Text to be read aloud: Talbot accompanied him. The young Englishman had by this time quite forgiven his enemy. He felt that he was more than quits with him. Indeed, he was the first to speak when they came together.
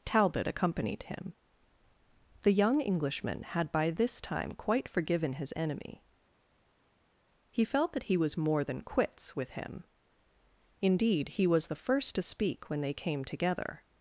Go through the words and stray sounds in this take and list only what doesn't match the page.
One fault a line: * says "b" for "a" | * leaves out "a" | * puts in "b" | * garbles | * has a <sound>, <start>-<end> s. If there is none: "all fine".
all fine